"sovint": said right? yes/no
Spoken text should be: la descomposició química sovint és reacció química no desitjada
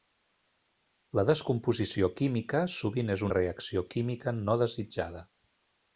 yes